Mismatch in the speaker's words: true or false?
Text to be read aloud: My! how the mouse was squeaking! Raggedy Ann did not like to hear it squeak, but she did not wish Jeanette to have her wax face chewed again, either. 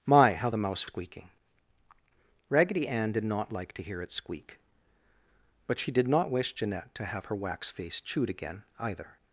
true